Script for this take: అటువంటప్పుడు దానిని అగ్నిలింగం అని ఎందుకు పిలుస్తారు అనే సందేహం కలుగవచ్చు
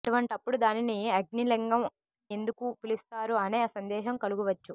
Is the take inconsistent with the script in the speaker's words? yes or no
yes